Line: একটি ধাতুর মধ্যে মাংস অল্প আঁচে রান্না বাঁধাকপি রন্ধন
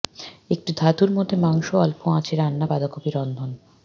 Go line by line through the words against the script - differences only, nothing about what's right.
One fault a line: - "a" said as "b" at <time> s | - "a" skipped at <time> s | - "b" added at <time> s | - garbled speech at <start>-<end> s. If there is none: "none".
none